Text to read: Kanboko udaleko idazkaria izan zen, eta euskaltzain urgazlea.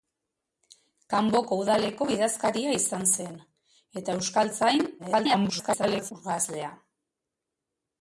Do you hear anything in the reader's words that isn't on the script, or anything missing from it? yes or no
yes